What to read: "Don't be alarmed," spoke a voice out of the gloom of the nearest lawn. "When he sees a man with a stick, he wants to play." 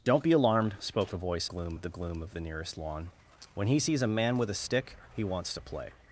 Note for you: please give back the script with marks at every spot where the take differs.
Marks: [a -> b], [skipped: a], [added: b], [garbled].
"Don't be alarmed," spoke a voice [out -> gloom] of the gloom of the nearest lawn. "When he sees a man with a stick, he wants to play."